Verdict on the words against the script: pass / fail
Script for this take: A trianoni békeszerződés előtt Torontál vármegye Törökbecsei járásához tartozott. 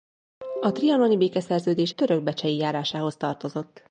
fail